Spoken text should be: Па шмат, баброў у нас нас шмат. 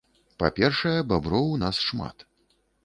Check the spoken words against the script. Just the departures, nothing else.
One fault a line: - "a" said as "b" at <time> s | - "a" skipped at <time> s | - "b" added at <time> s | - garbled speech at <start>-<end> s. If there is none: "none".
- "шмат" said as "першае" at 0.6 s
- "нас" skipped at 1.8 s